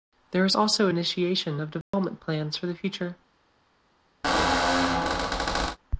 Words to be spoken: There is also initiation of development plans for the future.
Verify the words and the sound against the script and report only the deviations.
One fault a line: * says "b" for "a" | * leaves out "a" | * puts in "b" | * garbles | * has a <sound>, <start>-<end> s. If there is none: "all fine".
* has a dropout, 1.8-1.9 s
* has a squeak, 4.2-5.8 s